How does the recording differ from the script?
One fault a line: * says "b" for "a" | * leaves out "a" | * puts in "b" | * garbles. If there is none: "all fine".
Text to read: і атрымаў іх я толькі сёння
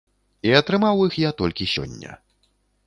all fine